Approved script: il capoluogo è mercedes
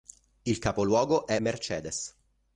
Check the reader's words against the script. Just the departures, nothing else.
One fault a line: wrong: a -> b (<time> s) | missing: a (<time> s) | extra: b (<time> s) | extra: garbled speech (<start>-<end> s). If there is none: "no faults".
no faults